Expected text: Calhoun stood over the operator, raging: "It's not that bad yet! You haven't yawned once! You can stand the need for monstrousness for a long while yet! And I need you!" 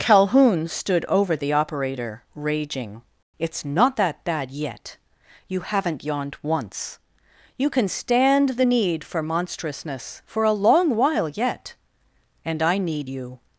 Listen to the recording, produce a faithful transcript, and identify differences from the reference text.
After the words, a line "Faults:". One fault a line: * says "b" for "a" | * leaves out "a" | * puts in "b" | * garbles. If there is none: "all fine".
Calhoun stood over the operator, raging: "It's not that bad yet! You haven't yawned once! You can stand the need for monstrousness for a long while yet! And I need you!"
Faults:
all fine